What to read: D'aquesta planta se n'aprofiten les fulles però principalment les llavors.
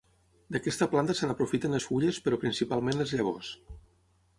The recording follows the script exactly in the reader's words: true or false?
true